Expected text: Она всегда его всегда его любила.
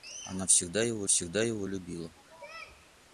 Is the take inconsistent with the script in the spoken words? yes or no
no